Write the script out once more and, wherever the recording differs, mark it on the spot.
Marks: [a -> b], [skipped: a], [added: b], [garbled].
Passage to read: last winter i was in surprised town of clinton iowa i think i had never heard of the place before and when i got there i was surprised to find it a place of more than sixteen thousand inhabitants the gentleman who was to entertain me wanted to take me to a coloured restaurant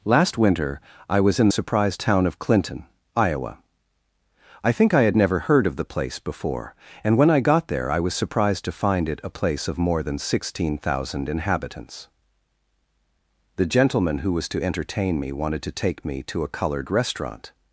last winter i was in surprised town of clinton iowa i think i had never heard of the place before and when i got there i was surprised to find it a place of more than sixteen thousand inhabitants the gentleman who was to entertain me wanted to take me to a coloured restaurant